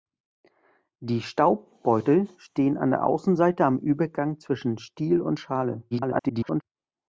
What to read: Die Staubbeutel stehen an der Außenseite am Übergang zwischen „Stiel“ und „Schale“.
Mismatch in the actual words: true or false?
true